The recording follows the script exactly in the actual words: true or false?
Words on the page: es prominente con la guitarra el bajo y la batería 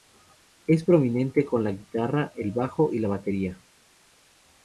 true